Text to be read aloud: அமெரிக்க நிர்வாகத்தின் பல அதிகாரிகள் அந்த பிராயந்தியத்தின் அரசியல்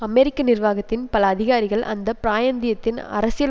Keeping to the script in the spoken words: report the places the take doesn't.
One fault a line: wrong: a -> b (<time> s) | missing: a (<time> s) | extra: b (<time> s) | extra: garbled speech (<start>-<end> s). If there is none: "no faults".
no faults